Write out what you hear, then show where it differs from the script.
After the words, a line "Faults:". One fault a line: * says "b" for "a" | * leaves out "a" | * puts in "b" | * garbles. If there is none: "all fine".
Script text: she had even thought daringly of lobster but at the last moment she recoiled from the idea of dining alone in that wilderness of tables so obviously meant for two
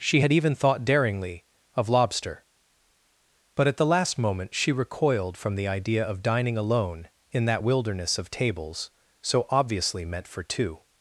she had even thought daringly of lobster but at the last moment she recoiled from the idea of dining alone in that wilderness of tables so obviously meant for two
Faults:
all fine